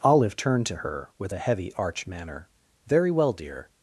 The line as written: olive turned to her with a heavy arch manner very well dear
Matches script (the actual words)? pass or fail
pass